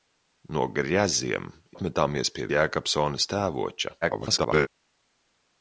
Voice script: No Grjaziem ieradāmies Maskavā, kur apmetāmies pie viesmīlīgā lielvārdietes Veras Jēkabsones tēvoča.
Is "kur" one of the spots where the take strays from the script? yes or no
yes